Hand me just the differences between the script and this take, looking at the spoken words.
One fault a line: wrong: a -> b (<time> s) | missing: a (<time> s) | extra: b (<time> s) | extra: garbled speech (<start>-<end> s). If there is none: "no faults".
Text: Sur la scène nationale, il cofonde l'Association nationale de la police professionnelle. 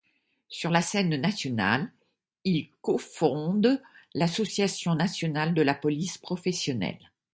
no faults